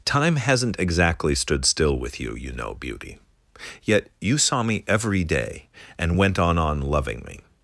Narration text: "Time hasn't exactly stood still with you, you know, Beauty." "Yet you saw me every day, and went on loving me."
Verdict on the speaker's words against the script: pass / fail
fail